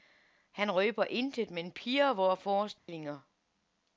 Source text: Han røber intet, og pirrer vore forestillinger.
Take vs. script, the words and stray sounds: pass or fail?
fail